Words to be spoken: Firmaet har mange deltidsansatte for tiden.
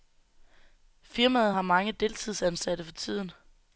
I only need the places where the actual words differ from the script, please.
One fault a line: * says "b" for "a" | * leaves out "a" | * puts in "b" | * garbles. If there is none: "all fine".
all fine